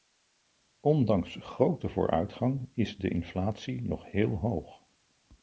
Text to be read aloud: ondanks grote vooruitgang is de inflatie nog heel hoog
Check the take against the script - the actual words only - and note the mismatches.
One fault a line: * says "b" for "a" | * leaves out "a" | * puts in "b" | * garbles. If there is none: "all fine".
all fine